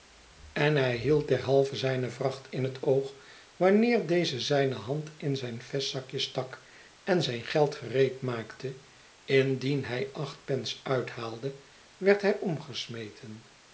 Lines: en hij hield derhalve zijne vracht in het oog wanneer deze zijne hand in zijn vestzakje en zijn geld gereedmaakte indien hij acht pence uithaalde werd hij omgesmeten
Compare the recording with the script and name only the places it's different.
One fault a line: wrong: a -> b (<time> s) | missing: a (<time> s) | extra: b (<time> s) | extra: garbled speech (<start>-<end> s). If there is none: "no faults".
extra: stak (6.2 s)